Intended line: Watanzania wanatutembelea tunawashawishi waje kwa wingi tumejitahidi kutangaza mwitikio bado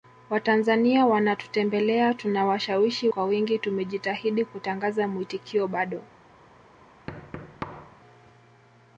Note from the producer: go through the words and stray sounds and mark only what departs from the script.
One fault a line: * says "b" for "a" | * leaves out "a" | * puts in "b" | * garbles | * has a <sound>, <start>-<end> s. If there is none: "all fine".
* leaves out "waje"
* has a thud, 7.1-8.0 s